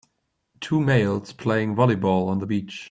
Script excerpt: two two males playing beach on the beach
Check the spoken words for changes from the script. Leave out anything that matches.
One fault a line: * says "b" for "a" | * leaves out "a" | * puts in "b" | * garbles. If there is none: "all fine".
* leaves out "two"
* says "volleyball" for "beach"